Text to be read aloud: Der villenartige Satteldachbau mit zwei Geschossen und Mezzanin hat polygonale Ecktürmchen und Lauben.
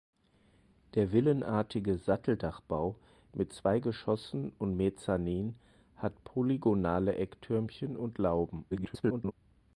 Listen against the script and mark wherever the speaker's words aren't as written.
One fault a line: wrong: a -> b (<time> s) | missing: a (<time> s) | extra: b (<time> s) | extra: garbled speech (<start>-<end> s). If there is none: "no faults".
extra: garbled speech (8.7-9.3 s)